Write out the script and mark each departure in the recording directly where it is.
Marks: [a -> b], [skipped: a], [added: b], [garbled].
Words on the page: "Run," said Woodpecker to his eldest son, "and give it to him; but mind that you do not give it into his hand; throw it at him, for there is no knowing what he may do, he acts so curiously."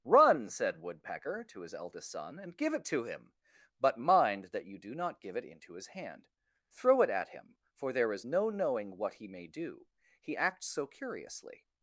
"Run," said Woodpecker to his eldest son, "and give it to him; but mind that you do not give it into his hand; throw it at him, for there is no knowing what he may do, he acts so curiously."